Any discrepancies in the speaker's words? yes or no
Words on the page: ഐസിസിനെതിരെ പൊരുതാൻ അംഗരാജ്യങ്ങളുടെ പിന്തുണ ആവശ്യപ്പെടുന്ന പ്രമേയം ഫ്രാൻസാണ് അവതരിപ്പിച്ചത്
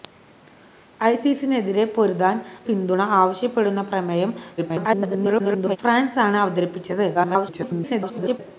yes